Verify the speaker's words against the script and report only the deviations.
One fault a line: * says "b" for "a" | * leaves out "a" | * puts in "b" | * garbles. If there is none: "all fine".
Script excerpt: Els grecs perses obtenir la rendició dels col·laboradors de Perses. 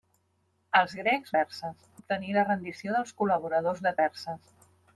all fine